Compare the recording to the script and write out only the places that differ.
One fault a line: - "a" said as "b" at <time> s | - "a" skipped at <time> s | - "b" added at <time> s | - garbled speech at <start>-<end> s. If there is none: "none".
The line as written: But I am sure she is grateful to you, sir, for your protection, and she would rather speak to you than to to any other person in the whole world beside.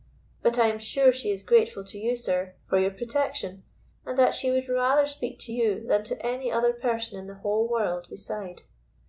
- "that" added at 4.2 s
- "to" skipped at 6.2 s